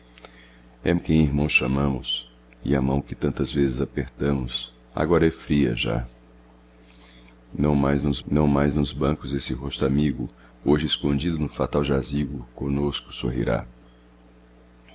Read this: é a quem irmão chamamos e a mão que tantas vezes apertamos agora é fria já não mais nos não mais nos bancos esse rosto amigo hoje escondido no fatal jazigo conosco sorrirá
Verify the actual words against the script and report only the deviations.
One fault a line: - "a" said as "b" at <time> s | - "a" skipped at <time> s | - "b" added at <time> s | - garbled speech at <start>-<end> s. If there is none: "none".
none